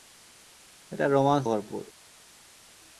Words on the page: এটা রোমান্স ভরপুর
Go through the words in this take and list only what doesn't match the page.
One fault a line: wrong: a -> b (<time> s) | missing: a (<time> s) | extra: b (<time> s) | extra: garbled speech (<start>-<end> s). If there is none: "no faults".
no faults